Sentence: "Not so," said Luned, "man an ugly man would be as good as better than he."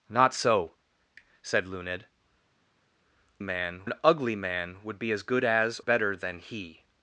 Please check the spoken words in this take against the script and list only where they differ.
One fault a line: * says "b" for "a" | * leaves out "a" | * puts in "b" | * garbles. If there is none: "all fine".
all fine